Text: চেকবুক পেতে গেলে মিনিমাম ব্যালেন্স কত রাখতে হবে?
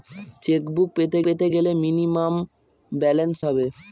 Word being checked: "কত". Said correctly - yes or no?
no